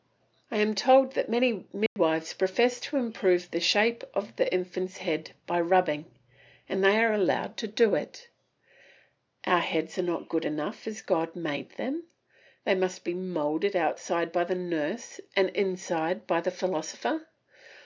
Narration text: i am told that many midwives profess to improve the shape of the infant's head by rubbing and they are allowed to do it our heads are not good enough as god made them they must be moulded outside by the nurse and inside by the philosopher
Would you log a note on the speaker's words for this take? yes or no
no